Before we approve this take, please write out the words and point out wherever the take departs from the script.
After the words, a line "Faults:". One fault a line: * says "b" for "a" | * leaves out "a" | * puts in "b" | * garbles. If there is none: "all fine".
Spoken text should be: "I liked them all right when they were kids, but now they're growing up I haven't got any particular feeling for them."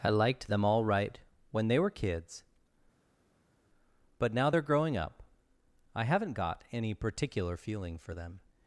"I liked them all right when they were kids, but now they're growing up I haven't got any particular feeling for them."
Faults:
all fine